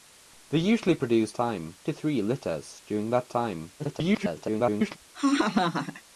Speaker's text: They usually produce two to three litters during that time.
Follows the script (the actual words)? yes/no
no